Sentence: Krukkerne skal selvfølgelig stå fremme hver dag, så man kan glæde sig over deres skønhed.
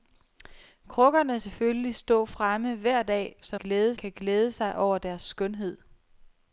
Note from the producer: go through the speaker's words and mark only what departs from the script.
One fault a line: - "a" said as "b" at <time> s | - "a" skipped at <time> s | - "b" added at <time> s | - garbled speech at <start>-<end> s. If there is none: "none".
- "skal" skipped at 1.4 s
- "man" said as "glæde" at 3.5 s